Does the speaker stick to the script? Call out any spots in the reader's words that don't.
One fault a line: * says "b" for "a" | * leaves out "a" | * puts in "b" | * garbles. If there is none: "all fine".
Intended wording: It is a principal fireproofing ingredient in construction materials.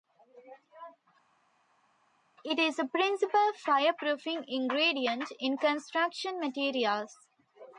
all fine